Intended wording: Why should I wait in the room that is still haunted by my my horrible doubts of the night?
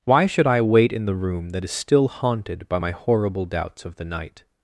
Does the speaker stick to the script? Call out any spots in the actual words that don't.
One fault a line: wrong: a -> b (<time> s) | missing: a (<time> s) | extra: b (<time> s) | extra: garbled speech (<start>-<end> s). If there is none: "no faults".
missing: my (2.9 s)